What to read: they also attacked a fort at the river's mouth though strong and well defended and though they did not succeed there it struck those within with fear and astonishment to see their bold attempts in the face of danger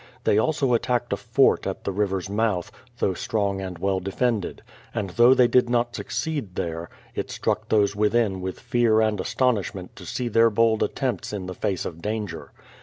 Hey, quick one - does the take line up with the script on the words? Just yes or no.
yes